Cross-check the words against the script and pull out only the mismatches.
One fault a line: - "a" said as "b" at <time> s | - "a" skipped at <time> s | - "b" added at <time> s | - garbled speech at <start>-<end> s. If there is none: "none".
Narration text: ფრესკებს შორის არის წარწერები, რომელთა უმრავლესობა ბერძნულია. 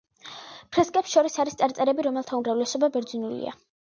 none